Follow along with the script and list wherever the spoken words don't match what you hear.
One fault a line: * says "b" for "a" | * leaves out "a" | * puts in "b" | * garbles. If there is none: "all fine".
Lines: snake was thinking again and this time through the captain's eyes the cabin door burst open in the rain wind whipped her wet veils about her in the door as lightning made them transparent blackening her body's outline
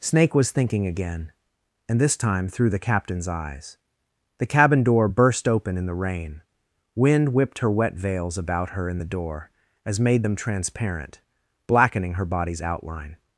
* leaves out "lightning"